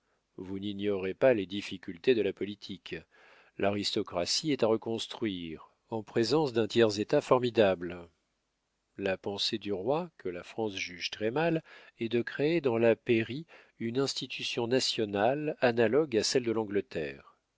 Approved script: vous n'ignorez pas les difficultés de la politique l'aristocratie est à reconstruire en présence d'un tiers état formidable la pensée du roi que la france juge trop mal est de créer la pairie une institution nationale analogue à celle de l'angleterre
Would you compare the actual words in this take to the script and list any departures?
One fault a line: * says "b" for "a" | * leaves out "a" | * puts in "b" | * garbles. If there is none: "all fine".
* says "très" for "trop"
* puts in "dans"